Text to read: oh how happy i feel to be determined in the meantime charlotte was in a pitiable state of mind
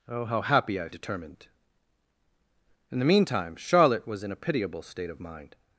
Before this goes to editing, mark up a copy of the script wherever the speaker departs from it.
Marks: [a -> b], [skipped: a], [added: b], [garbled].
oh how happy i [skipped: feel to be] determined in the meantime charlotte was in a pitiable state of mind